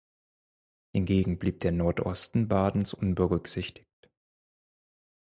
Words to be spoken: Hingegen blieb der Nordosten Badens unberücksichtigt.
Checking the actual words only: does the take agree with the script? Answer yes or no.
yes